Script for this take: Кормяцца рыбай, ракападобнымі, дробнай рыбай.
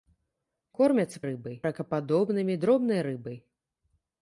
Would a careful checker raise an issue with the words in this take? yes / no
no